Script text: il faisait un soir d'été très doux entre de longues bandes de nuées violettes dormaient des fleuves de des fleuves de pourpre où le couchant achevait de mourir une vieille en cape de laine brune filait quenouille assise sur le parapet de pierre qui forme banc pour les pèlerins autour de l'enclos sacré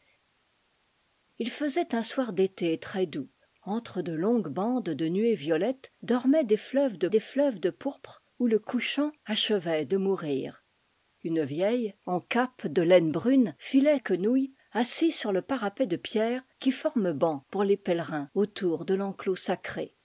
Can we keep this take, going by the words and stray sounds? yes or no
yes